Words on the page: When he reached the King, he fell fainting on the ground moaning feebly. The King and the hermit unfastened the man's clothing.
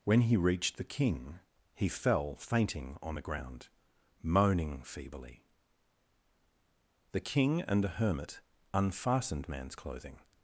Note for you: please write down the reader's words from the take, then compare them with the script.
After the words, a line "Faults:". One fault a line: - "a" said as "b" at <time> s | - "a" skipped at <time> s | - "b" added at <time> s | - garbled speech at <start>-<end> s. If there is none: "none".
When he reached the King, he fell fainting on the ground moaning feebly. The King and the hermit unfastened man's clothing.
Faults:
- "the" skipped at 9.5 s